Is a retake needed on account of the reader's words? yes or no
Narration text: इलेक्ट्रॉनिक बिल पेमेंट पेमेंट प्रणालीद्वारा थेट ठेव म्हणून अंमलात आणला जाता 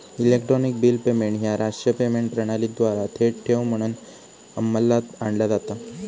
yes